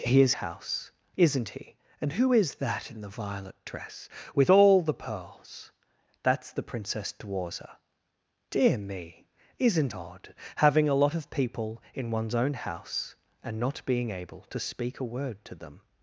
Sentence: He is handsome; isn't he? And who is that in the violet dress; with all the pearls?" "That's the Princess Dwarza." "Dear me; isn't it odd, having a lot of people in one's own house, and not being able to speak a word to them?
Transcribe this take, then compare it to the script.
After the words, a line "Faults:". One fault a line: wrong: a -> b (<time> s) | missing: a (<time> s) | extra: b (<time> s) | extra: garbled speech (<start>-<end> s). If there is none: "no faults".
He is house; isn't he? And who is that in the violet dress; with all the pearls?" "That's the Princess Dwarza." "Dear me; isn't odd, having a lot of people in one's own house, and not being able to speak a word to them?
Faults:
wrong: handsome -> house (0.3 s)
missing: it (9.9 s)